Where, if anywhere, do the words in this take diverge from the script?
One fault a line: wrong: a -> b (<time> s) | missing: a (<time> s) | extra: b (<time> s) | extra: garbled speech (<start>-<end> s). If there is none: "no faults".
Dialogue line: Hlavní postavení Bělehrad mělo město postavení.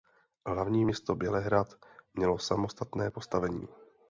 wrong: postavení -> město (0.8 s)
wrong: město -> samostatné (2.4 s)